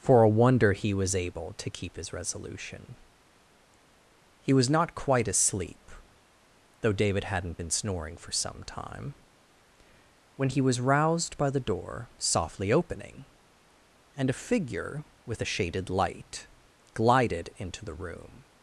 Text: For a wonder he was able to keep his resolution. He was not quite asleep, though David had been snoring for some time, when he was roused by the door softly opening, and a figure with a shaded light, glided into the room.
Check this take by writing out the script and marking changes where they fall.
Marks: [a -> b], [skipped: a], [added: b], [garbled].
For a wonder he was able to keep his resolution. He was not quite asleep, though David [had -> hadn't] been snoring for some time, when he was roused by the door softly opening, and a figure with a shaded light, glided into the room.